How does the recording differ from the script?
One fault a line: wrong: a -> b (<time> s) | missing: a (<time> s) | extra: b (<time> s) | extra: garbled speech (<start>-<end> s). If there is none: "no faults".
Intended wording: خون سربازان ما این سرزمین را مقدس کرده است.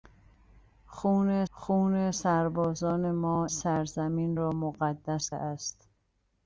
extra: خون (1.5 s)
missing: این (3.5 s)
missing: کرده (5.3 s)